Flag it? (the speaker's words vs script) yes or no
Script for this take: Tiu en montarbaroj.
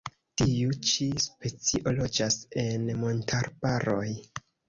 yes